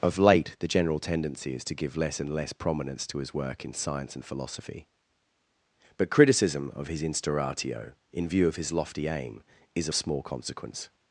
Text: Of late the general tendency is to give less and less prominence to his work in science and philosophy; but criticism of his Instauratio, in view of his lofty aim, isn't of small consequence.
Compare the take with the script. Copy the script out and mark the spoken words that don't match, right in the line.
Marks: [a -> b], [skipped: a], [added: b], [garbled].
Of late the general tendency is to give less and less prominence to his work in science and philosophy; but criticism of his Instauratio, in view of his lofty aim, [isn't -> is] of small consequence.